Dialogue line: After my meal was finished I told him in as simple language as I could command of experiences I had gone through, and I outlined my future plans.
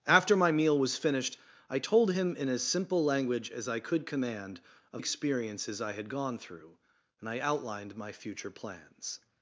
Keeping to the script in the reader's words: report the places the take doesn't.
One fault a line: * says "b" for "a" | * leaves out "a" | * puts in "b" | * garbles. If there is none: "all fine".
all fine